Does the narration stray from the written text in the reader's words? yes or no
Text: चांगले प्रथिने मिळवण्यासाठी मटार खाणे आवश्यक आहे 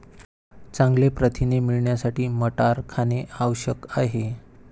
no